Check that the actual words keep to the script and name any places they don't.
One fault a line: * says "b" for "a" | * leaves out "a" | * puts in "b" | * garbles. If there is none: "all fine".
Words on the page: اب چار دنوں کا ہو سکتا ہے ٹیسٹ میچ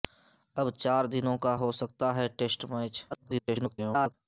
* garbles